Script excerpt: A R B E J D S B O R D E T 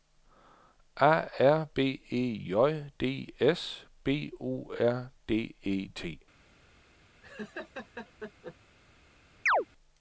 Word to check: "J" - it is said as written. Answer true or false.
true